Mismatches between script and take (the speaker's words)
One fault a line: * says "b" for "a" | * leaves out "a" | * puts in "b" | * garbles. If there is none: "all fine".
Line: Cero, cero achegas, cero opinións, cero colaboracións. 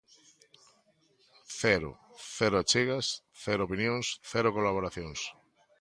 all fine